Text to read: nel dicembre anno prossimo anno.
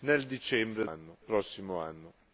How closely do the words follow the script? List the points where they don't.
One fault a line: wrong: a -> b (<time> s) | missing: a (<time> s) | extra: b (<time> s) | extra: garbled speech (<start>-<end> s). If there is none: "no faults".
no faults